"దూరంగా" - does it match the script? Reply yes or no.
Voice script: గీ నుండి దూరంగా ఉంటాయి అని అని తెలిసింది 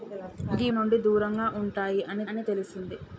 yes